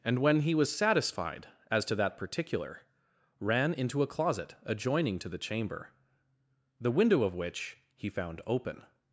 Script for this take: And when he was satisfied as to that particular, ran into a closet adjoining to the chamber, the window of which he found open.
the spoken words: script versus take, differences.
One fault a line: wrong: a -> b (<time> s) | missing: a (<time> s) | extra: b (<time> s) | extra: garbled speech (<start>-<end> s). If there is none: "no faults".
no faults